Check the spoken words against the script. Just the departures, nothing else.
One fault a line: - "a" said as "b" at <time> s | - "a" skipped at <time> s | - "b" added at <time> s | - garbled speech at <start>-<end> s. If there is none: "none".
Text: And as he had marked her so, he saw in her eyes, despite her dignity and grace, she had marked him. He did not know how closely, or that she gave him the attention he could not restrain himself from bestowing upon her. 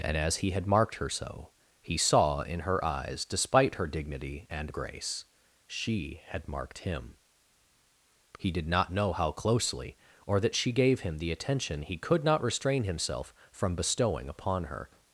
none